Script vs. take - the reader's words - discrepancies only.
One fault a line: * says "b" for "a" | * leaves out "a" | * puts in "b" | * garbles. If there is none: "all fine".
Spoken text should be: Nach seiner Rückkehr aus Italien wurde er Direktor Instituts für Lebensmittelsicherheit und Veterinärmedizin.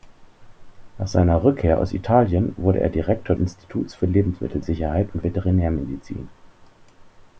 all fine